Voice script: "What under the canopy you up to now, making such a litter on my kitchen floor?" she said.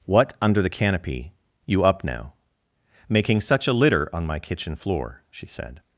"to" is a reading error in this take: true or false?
true